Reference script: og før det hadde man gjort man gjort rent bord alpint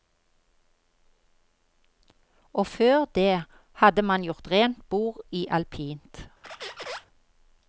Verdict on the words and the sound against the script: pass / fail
fail